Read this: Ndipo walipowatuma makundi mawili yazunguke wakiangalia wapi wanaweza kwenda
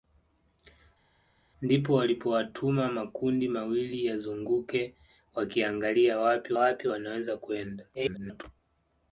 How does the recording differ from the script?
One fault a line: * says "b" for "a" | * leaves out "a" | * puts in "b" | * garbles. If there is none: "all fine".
* puts in "wapi"
* garbles